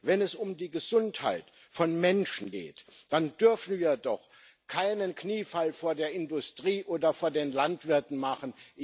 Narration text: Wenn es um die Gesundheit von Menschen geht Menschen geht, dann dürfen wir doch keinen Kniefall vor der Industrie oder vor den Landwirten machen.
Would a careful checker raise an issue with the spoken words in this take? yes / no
yes